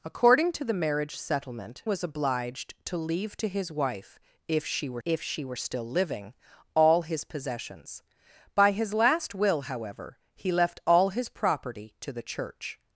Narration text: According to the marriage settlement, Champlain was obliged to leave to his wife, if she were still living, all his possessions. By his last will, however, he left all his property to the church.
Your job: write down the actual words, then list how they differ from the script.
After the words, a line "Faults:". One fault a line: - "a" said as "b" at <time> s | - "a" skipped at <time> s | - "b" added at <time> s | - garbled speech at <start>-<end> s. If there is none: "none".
According to the marriage settlement, Was obliged to leave to his wife, if she were if she were still living, all his possessions. By his last will, however, he left all his property to the church.
Faults:
- "Champlain" skipped at 1.8 s
- "if she were" added at 5.0 s